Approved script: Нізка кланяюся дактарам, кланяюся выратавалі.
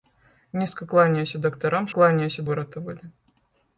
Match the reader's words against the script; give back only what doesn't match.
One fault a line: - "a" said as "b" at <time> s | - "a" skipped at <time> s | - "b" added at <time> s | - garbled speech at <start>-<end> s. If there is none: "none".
none